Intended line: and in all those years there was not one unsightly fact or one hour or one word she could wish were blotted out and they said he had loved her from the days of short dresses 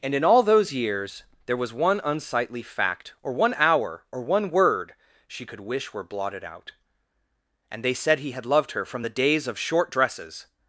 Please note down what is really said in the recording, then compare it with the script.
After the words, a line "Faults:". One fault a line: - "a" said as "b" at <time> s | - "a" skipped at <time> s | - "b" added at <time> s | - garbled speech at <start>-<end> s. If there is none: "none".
and in all those years there was one unsightly fact or one hour or one word she could wish were blotted out and they said he had loved her from the days of short dresses
Faults:
- "not" skipped at 1.7 s